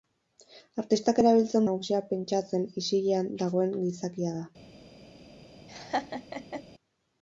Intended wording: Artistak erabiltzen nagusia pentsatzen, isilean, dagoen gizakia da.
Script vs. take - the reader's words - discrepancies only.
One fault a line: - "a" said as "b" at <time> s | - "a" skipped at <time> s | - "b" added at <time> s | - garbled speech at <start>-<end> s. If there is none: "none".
none